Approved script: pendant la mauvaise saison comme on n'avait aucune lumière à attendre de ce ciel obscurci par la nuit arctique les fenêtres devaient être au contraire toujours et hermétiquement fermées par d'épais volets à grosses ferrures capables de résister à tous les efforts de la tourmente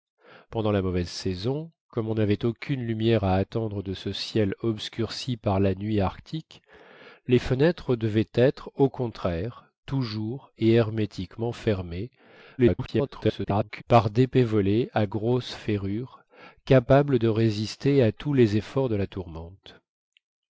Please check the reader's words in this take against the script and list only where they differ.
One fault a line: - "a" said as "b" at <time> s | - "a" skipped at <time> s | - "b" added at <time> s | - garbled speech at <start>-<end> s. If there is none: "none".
- garbled speech at 12.6-13.8 s